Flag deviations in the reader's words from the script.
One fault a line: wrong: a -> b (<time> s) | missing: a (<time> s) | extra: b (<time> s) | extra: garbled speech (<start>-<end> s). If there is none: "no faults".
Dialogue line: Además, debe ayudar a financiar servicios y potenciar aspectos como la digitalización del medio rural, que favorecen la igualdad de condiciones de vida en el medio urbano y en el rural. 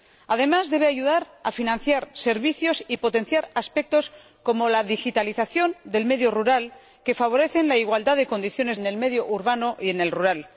missing: de vida (8.8 s)